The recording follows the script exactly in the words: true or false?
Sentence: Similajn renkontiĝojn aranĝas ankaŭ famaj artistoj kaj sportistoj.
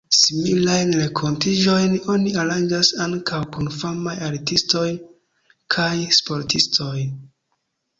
false